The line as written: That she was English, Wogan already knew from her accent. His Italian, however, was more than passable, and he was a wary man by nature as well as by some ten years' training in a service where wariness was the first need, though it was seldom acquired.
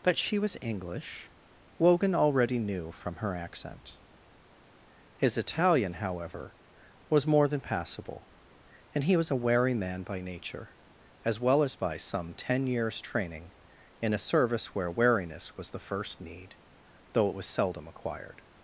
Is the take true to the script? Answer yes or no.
yes